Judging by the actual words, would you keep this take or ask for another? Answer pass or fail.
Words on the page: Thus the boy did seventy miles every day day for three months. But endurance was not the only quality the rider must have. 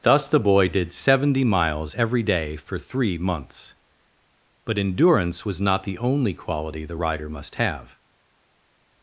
fail